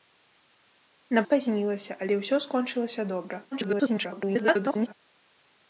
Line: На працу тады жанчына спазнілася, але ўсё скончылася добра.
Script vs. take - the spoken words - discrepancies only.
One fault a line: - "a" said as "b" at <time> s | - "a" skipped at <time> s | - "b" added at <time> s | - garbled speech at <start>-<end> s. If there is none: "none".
- "працу тады жанчына" skipped at 1.2 s
- garbled speech at 3.5-4.9 s